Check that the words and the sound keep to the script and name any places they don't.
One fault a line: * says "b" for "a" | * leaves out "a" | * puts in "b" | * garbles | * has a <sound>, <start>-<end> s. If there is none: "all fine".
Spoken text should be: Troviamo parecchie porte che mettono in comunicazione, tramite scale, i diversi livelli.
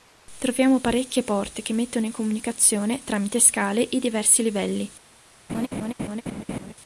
* has a laugh, 5.5-6.7 s